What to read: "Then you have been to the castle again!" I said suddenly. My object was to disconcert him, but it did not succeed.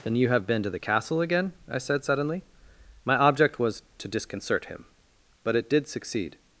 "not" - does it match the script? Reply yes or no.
no